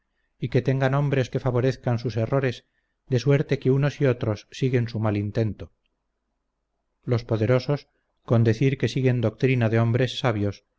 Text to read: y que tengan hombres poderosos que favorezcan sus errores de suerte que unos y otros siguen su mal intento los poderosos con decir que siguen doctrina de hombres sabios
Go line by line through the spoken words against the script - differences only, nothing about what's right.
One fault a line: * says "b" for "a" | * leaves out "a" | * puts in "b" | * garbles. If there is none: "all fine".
* leaves out "poderosos"